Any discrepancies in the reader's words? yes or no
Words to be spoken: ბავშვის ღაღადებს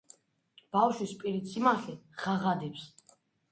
yes